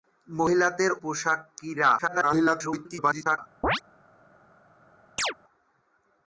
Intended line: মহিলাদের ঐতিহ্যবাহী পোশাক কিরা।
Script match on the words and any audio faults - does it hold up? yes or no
no